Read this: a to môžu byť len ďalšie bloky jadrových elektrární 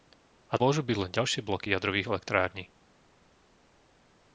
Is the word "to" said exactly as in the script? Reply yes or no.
no